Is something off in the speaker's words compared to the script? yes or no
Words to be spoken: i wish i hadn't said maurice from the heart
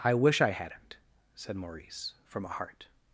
yes